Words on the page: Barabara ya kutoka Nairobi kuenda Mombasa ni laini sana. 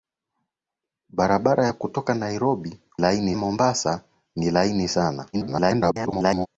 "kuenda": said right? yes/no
no